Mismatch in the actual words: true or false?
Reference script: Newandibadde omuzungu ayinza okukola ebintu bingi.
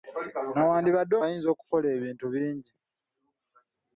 true